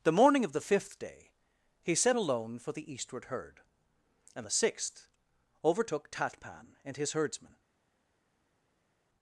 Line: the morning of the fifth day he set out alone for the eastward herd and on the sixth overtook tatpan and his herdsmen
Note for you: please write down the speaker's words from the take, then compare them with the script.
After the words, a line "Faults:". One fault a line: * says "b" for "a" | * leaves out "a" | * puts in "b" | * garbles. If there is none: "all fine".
the morning of the fifth day he set alone for the eastward herd and the sixth overtook tatpan and his herdsmen
Faults:
* leaves out "out"
* leaves out "on"